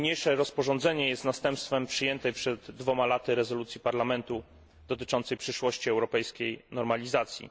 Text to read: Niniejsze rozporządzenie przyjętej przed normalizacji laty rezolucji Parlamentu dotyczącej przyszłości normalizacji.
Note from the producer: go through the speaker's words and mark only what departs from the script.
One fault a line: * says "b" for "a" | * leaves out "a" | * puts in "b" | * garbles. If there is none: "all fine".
* puts in "jest następstwem"
* says "dwoma" for "normalizacji"
* puts in "europejskiej"